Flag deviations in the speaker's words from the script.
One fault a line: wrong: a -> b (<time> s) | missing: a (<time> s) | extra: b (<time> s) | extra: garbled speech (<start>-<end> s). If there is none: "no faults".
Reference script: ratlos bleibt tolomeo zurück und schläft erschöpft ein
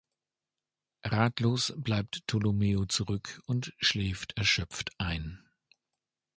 no faults